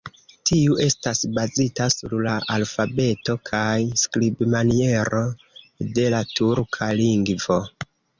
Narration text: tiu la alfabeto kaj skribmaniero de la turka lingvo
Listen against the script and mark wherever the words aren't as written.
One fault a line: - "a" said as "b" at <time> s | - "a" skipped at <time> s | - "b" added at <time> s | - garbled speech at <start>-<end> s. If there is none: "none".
- "estas bazita sur" added at 0.8 s